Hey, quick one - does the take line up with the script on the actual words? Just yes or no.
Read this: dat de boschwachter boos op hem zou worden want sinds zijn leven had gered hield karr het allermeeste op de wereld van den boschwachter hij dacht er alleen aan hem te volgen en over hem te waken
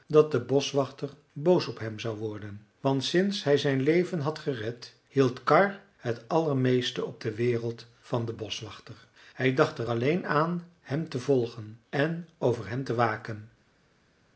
no